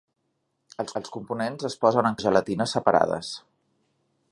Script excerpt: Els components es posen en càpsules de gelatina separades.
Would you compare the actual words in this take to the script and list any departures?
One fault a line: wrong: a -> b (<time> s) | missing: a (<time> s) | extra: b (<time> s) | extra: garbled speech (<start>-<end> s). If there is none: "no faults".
extra: els (1.0 s)
missing: càpsules (2.2 s)